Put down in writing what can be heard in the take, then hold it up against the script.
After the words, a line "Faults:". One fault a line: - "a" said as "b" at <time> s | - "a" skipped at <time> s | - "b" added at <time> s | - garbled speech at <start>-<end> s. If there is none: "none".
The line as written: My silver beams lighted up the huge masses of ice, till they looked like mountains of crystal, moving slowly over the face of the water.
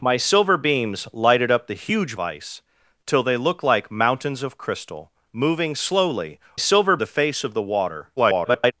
My silver beams lighted up the huge ice, till they looked like mountains of crystal, moving slowly silver the face of the water. [garbled]
Faults:
- "masses of" skipped at 2.2 s
- "over" said as "silver" at 6.6 s
- garbled speech at 8.2-8.7 s